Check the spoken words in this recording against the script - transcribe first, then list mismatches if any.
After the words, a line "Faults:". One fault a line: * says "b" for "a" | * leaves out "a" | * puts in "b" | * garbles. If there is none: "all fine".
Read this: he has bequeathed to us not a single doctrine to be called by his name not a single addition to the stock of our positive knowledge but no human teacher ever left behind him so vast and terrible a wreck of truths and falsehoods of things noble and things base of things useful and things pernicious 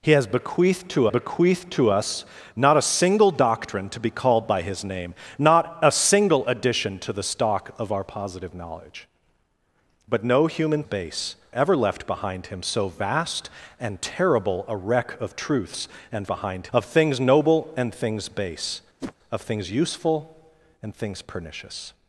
he has bequeathed to bequeathed to us not a single doctrine to be called by his name not a single addition to the stock of our positive knowledge but no human base ever left behind him so vast and terrible a wreck of truths and behind of things noble and things base of things useful and things pernicious
Faults:
* puts in "bequeathed to"
* says "base" for "teacher"
* says "behind" for "falsehoods"